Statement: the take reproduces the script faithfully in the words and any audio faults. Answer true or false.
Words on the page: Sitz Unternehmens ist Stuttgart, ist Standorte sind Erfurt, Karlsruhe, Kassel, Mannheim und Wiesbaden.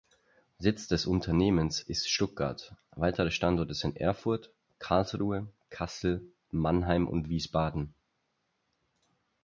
false